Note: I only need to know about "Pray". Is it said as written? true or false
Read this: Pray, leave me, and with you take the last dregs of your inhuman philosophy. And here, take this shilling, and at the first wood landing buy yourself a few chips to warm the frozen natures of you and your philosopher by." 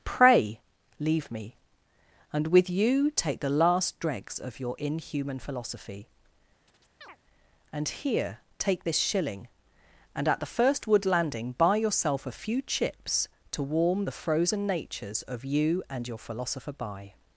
true